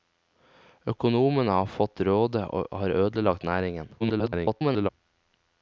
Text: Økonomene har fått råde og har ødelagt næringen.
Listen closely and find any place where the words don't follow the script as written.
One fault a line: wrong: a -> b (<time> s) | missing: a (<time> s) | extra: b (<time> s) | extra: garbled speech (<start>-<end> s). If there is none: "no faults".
extra: garbled speech (4.0-4.9 s)